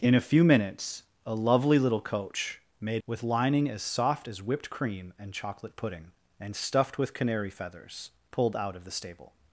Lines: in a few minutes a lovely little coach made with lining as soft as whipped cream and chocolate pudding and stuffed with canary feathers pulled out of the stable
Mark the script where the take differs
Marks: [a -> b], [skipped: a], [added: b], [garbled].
in a few minutes a lovely little coach made with lining as soft as whipped cream and chocolate pudding and stuffed with canary feathers pulled out of the stable